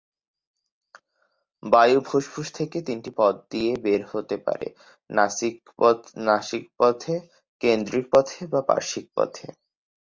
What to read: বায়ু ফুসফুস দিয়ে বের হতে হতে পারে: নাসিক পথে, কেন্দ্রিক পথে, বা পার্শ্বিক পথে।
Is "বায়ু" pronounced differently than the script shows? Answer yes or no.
no